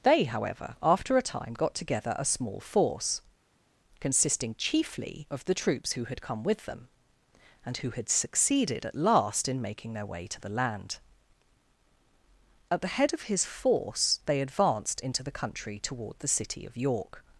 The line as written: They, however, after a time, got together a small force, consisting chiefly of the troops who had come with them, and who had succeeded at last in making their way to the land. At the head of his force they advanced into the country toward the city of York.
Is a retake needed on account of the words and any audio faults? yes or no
no